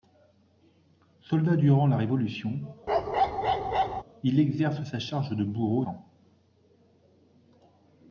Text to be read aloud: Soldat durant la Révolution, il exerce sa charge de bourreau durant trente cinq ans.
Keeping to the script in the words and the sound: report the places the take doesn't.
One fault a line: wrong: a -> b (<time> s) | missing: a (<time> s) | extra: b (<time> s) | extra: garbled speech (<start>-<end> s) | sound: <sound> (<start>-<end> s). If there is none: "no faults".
sound: bark (2.9-4.0 s)
missing: durant trente cinq (5.8 s)